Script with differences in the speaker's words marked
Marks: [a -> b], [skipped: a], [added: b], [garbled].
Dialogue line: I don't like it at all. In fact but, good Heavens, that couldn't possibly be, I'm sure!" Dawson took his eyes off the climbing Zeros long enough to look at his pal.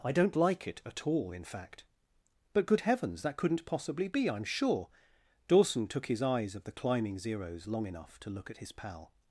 I don't like it at all. In fact but, good Heavens, that couldn't possibly be, I'm sure!" Dawson took his eyes [off -> of] the climbing Zeros long enough to look at his pal.